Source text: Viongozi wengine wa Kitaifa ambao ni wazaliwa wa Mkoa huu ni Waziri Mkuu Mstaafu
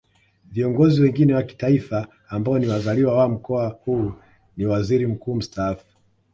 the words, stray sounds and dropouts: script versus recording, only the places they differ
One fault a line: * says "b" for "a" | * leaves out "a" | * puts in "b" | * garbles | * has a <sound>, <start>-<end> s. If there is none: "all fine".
all fine